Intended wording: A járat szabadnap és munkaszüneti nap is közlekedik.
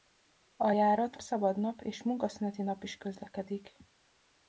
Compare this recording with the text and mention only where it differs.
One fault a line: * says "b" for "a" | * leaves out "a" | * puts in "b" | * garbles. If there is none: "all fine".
all fine